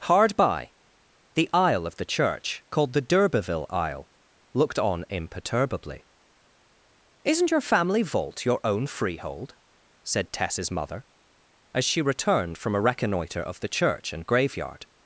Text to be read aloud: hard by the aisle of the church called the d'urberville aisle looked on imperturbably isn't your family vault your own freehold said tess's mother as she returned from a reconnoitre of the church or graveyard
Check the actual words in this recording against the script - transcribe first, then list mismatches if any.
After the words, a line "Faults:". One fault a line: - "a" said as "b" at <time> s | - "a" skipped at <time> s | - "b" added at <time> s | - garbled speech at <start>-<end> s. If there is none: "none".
hard by the aisle of the church called the d'urberville aisle looked on imperturbably isn't your family vault your own freehold said tess's mother as she returned from a reconnoitre of the church and graveyard
Faults:
- "or" said as "and" at 14.1 s